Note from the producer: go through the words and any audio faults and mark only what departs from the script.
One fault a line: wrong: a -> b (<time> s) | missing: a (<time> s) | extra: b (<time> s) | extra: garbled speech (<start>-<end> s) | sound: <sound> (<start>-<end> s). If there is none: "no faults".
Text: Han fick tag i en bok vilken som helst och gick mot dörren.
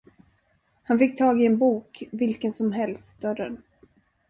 missing: och gick mot (3.2 s)